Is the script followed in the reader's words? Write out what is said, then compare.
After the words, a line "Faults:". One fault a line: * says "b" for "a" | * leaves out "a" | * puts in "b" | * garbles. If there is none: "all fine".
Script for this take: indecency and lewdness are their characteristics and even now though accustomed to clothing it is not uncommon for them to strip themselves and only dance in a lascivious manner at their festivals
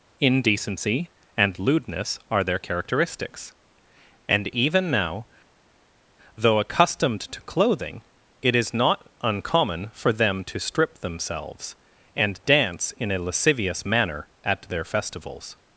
indecency and lewdness are their characteristics and even now though accustomed to clothing it is not uncommon for them to strip themselves and dance in a lascivious manner at their festivals
Faults:
* leaves out "only"